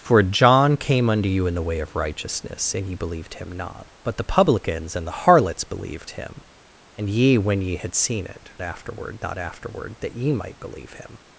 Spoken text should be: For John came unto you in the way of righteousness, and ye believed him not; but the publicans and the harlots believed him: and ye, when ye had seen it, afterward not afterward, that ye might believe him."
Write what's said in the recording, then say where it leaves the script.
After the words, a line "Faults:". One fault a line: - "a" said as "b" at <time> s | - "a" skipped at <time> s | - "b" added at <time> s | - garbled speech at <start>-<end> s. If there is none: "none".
For John came unto you in the way of righteousness, and ye believed him not; but the publicans and the harlots believed him: and ye, when ye had seen it, afterward not afterward, that ye might believe him."
Faults:
none